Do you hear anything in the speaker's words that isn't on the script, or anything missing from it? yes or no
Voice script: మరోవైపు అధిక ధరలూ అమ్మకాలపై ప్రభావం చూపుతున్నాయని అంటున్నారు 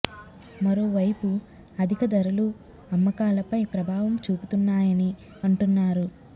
no